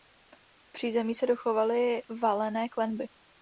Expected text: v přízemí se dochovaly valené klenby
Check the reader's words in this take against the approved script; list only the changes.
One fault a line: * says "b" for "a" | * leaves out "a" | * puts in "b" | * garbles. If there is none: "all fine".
all fine